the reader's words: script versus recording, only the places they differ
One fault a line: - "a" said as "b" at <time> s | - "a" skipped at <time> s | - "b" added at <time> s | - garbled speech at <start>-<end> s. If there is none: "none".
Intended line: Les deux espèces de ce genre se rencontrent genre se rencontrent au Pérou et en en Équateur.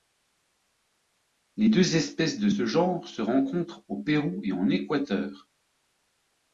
- "genre se rencontrent" skipped at 3.8 s
- "en" skipped at 4.7 s